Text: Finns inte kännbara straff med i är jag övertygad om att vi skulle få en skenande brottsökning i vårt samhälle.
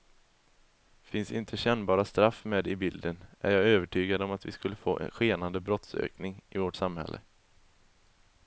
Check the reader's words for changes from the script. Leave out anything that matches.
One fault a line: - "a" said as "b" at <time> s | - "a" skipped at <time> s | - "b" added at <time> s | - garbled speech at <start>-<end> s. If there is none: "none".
- "bilden" added at 2.8 s